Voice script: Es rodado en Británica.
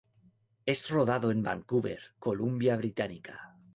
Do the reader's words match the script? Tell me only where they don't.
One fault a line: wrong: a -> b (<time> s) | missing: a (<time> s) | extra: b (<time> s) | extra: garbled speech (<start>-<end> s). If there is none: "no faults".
extra: Vancouver Columbia (1.4 s)